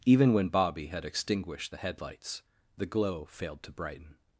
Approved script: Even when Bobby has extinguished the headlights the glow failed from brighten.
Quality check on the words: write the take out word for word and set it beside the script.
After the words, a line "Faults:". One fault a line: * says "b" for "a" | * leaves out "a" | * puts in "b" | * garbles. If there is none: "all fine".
Even when Bobby had extinguished the headlights the glow failed to brighten.
Faults:
* says "had" for "has"
* says "to" for "from"